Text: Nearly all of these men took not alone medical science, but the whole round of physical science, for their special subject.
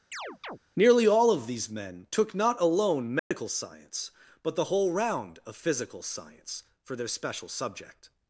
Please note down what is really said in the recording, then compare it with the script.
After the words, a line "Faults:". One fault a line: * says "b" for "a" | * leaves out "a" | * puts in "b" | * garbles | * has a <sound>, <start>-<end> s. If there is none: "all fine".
Nearly all of these men took not alone medical science, but the whole round of physical science, for their special subject.
Faults:
* has a chirp, 0.1-0.6 s
* has a dropout, 3.2-3.3 s